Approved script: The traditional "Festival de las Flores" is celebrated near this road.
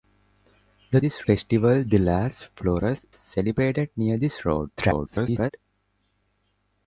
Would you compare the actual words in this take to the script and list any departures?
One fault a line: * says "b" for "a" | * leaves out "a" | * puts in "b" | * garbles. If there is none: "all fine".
* says "this" for "traditional"
* leaves out "is"
* garbles